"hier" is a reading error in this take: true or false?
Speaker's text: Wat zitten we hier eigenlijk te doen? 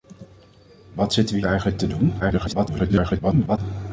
true